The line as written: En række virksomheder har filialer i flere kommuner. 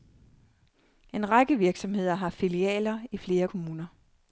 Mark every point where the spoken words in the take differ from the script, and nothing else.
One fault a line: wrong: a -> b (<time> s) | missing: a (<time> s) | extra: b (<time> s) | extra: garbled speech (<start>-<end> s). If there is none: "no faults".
no faults